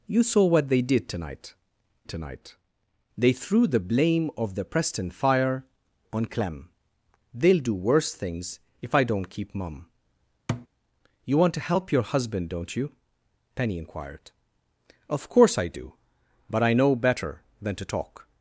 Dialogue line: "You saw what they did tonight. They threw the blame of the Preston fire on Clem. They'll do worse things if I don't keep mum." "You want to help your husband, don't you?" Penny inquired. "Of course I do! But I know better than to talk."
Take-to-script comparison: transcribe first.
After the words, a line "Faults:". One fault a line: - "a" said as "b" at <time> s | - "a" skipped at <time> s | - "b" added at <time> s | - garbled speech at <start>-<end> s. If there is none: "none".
"You saw what they did tonight tonight. They threw the blame of the Preston fire on Clem. They'll do worse things if I don't keep mum." "You want to help your husband, don't you?" Penny inquired. "Of course I do! But I know better than to talk."
Faults:
- "tonight" added at 2.1 s